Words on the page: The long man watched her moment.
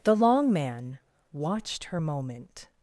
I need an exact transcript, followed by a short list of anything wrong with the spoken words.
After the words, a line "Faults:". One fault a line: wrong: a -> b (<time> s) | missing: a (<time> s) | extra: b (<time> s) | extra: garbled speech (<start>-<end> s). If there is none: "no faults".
The long man watched her moment.
Faults:
no faults